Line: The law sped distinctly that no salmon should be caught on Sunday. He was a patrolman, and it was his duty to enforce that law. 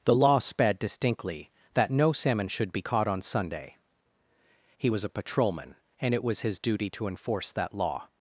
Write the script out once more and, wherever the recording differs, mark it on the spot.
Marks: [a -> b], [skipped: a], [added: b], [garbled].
The law sped distinctly that no salmon should be caught on Sunday. He was a patrolman, and it was his duty to enforce that law.